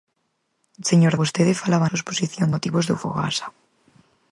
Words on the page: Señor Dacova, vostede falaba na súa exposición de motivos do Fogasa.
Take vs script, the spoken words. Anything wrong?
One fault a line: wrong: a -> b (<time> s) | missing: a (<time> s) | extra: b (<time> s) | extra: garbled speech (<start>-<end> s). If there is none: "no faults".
missing: Dacova (1.1 s)
missing: na (1.9 s)
missing: de (2.5 s)